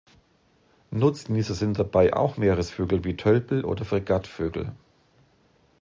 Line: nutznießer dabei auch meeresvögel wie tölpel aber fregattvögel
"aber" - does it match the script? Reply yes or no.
no